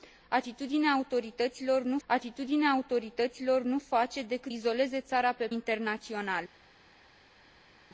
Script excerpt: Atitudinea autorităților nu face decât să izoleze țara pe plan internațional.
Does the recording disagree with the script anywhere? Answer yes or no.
yes